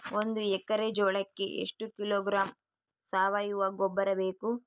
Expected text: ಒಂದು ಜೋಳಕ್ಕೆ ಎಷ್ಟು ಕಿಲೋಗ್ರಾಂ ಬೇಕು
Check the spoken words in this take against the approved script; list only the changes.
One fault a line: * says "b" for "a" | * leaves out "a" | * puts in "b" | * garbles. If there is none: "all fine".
* puts in "ಎಕ್ಕರೆ"
* puts in "ಸಾವಯುವ ಗೊಬ್ಬರ"